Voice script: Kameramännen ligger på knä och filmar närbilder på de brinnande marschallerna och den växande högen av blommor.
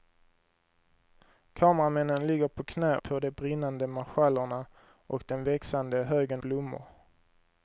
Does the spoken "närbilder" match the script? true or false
false